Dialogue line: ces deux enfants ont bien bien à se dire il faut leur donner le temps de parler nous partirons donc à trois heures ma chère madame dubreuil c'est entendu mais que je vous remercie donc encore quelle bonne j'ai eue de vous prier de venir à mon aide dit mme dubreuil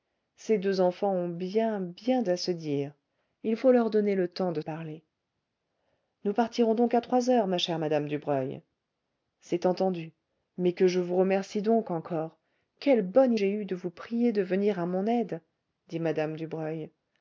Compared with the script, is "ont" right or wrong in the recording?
right